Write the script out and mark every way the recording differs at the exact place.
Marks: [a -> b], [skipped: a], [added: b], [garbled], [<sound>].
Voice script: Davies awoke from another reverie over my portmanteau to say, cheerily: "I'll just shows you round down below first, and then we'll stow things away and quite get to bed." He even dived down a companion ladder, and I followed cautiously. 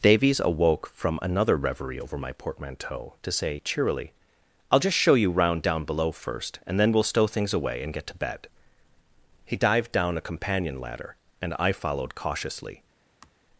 Davies awoke from another reverie over my portmanteau to say, cheerily: "I'll just [shows -> show] you round down below first, and then we'll stow things away and [skipped: quite] get to bed." He [skipped: even] dived down a companion ladder, and I followed cautiously. [sigh]